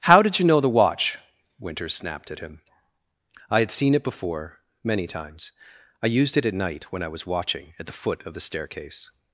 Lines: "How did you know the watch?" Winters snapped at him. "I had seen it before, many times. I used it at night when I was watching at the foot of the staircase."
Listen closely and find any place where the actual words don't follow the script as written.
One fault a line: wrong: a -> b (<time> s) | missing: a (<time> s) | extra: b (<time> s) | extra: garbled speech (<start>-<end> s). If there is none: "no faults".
no faults